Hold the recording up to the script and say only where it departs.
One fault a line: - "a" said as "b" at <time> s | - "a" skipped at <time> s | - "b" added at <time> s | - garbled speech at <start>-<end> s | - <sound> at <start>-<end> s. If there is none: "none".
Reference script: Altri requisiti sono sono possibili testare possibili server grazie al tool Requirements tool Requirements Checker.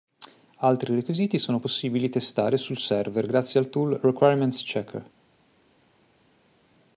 - "sono" skipped at 1.6 s
- "possibili" said as "sul" at 2.5 s
- "tool Requirements" skipped at 4.6 s